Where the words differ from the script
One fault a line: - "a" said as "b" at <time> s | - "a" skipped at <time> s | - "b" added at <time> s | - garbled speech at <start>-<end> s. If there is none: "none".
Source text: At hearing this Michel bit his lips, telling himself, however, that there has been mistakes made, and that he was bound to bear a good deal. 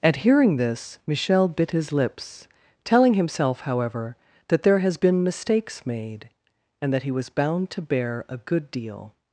none